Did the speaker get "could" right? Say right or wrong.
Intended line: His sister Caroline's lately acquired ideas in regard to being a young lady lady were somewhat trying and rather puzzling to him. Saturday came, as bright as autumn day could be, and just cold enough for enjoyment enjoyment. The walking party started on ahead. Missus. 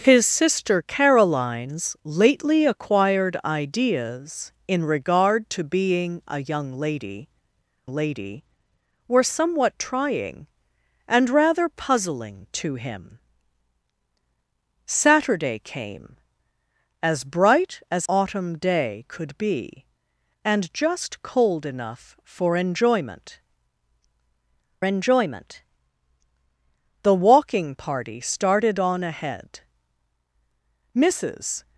right